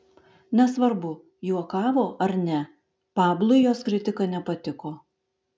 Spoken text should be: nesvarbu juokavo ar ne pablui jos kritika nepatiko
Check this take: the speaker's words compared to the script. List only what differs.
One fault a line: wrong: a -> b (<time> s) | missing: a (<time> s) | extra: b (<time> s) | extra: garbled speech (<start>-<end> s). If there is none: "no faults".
no faults